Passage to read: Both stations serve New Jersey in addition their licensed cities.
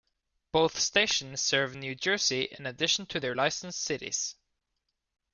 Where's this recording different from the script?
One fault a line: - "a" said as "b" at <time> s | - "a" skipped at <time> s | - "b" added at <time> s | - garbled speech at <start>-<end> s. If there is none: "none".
- "to" added at 3.1 s